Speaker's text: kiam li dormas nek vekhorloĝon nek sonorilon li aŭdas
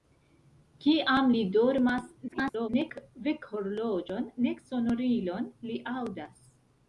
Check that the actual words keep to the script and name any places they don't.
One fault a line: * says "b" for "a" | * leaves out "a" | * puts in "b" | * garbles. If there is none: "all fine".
* garbles